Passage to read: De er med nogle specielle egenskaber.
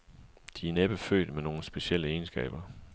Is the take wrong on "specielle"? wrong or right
right